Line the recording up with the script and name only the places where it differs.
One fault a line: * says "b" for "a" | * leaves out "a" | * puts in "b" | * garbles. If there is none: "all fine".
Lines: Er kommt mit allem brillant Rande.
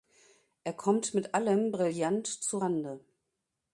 * puts in "zu"